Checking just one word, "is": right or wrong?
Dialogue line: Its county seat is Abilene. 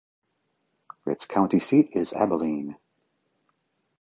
right